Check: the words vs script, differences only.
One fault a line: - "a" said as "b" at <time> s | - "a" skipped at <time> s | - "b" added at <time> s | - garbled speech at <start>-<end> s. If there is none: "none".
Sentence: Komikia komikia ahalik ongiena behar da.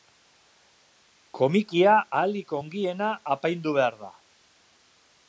- "komikia" skipped at 1.9 s
- "apaindu" added at 3.4 s